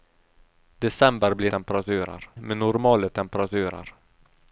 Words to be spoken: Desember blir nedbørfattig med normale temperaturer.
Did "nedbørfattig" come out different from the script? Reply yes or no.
yes